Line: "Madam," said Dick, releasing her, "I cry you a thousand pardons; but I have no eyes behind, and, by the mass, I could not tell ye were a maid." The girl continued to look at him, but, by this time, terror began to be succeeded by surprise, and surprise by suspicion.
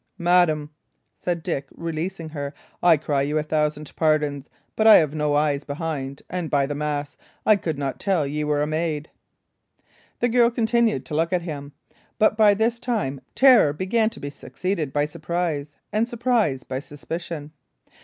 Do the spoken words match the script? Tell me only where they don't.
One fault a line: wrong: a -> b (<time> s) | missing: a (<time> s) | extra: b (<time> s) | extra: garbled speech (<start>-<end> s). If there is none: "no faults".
no faults